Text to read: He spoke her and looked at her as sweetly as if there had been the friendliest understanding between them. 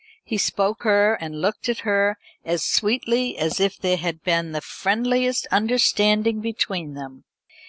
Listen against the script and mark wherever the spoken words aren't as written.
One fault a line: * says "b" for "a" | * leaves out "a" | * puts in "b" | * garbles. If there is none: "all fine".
all fine